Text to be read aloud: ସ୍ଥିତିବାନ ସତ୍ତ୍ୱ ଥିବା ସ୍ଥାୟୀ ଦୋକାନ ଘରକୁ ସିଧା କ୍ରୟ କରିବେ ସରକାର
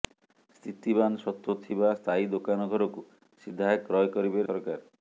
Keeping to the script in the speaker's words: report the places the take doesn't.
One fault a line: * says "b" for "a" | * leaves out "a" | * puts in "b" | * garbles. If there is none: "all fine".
all fine